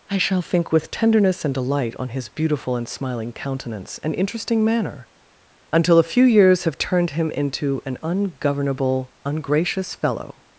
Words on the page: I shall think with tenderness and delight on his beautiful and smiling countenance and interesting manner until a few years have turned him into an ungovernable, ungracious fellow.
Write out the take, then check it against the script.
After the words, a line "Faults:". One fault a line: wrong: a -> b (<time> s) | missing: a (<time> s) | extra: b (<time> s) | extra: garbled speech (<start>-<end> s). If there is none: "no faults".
I shall think with tenderness and delight on his beautiful and smiling countenance and interesting manner until a few years have turned him into an ungovernable, ungracious fellow.
Faults:
no faults